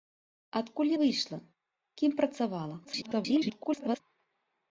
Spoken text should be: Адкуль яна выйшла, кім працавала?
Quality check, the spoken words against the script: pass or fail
fail